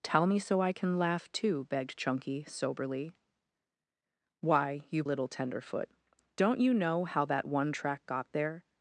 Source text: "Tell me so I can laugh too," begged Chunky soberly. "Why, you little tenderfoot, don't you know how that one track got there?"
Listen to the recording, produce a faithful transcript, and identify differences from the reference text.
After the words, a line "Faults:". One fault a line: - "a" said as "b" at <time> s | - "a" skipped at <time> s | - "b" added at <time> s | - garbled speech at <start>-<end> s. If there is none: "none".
"Tell me so I can laugh too," begged Chunky soberly. "Why, you little tenderfoot, don't you know how that one track got there?"
Faults:
none